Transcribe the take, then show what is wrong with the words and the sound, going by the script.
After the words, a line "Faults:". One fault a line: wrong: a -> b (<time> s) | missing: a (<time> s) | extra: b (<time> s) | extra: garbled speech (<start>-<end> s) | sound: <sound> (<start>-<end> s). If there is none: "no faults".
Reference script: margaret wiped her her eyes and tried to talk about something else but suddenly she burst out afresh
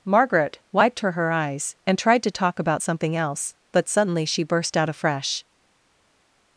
margaret wiped her her eyes and tried to talk about something else but suddenly she burst out afresh
Faults:
no faults